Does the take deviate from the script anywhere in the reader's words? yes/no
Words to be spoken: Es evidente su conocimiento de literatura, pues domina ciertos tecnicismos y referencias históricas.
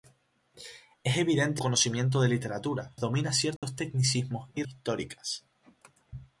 yes